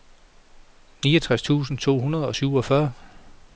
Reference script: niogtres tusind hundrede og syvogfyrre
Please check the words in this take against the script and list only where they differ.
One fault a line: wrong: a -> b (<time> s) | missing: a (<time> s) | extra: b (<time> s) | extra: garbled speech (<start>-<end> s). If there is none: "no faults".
extra: to (1.8 s)